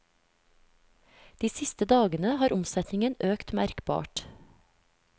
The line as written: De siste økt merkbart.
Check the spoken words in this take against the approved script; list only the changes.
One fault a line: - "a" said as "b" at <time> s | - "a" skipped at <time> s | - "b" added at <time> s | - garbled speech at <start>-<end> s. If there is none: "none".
- "dagene har omsetningen" added at 1.9 s